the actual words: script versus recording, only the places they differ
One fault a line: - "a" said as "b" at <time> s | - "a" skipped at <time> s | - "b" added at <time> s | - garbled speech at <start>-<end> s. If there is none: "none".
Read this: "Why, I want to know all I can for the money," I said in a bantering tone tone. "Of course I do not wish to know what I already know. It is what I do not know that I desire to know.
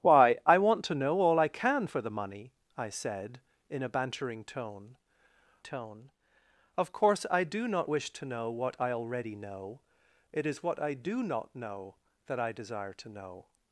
none